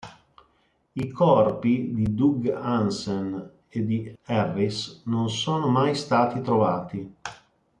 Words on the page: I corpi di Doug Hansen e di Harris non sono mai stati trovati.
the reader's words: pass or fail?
pass